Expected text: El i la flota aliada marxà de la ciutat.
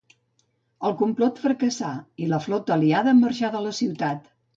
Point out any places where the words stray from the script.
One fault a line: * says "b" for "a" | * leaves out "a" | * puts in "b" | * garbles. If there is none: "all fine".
* puts in "complot fracassà"